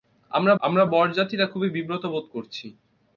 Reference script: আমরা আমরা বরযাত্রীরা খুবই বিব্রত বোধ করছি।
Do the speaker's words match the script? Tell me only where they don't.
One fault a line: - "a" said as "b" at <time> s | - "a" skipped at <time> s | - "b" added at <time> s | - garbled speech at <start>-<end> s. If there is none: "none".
none